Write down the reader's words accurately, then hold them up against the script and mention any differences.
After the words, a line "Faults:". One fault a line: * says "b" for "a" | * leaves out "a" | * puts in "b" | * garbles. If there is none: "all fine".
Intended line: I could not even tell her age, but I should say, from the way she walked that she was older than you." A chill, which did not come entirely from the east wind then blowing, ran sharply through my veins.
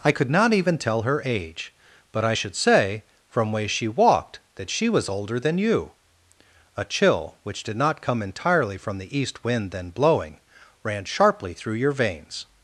I could not even tell her age, but I should say, from way she walked that she was older than you." A chill, which did not come entirely from the east wind then blowing, ran sharply through your veins.
Faults:
* leaves out "the"
* says "your" for "my"